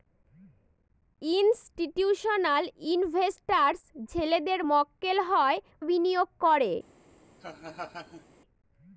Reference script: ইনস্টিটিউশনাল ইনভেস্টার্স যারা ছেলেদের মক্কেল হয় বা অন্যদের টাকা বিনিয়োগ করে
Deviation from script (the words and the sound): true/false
true